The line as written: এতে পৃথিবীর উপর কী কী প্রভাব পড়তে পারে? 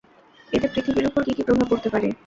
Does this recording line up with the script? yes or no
yes